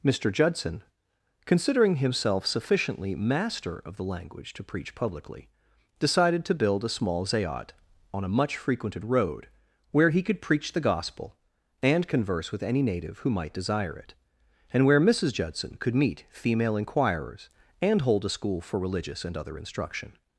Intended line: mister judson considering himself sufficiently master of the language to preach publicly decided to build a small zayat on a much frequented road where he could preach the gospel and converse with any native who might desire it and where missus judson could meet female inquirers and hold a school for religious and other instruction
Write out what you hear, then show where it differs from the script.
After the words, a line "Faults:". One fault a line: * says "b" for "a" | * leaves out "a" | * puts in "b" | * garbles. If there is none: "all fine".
mister judson considering himself sufficiently master of the language to preach publicly decided to build a small zayat on a much frequented road where he could preach the gospel and converse with any native who might desire it and where missus judson could meet female inquirers and hold a school for religious and other instruction
Faults:
all fine